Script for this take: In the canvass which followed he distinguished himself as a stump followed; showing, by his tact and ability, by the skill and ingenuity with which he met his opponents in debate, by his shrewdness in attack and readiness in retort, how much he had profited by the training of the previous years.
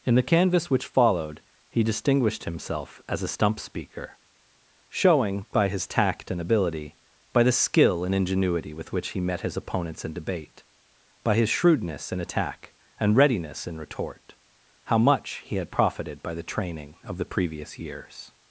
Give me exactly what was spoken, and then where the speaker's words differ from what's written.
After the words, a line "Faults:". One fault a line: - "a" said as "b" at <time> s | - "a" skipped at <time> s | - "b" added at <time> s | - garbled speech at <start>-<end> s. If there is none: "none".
In the canvass which followed he distinguished himself as a stump speaker; showing, by his tact and ability, by the skill and ingenuity with which he met his opponents in debate, by his shrewdness in attack and readiness in retort, how much he had profited by the training of the previous years.
Faults:
- "followed" said as "speaker" at 3.6 s